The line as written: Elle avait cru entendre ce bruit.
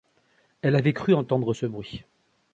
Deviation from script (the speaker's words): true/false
false